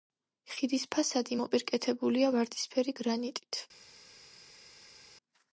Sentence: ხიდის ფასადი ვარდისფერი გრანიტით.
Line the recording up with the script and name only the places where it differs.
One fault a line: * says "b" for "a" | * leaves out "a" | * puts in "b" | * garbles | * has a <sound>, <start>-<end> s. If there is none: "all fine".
* puts in "მოპირკეთებულია"